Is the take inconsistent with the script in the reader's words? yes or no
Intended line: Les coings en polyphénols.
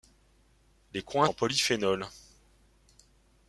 no